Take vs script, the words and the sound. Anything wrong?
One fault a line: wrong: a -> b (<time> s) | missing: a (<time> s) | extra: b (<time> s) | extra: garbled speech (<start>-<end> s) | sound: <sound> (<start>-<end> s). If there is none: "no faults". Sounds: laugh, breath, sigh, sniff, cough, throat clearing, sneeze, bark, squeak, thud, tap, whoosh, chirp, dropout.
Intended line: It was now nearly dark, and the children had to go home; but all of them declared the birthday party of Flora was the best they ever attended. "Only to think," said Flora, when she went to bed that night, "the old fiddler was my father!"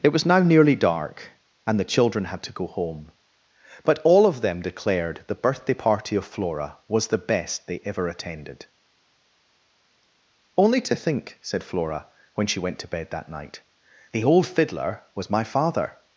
no faults